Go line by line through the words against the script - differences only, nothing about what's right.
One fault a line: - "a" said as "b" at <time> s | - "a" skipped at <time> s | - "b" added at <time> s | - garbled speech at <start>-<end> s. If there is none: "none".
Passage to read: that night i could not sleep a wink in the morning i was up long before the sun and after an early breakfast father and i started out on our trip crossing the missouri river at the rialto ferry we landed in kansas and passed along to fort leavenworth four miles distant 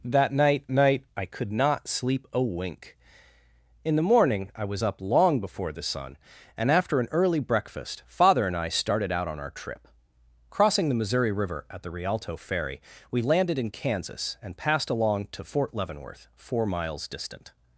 - "night" added at 0.7 s